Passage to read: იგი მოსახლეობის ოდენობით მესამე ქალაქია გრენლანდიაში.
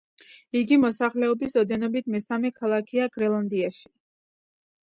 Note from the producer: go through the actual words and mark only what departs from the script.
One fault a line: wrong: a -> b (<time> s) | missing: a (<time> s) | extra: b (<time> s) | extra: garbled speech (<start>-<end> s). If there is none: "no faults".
no faults